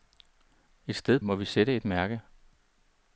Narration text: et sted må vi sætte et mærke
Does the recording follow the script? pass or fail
pass